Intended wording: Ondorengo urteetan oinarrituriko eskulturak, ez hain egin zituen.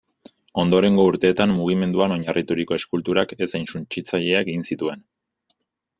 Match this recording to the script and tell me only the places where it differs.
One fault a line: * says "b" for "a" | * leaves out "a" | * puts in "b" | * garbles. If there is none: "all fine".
* puts in "mugimenduan"
* puts in "suntsitzaileak"